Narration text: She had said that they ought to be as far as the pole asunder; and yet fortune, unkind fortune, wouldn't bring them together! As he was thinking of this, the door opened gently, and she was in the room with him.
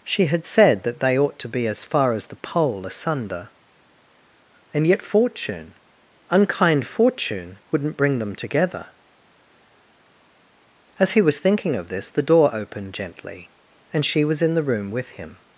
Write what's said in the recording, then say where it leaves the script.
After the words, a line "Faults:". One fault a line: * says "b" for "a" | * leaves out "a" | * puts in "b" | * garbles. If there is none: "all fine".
She had said that they ought to be as far as the pole asunder; and yet fortune, unkind fortune, wouldn't bring them together! As he was thinking of this, the door opened gently, and she was in the room with him.
Faults:
all fine